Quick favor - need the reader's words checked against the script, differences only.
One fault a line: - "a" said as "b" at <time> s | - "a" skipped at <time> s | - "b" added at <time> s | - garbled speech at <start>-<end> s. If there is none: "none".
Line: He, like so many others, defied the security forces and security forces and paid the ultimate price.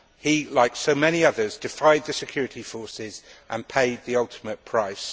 - "security forces and" skipped at 3.7 s